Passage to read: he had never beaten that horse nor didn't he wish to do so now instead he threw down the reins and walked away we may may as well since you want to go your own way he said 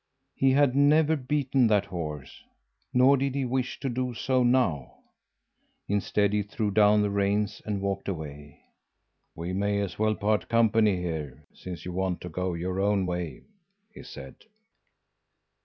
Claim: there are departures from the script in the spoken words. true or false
true